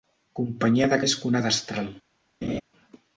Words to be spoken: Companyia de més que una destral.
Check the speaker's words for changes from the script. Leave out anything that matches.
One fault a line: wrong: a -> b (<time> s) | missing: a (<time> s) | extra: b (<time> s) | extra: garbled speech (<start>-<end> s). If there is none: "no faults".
no faults